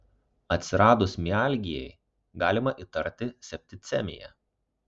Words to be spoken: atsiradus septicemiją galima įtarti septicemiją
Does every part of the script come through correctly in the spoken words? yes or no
no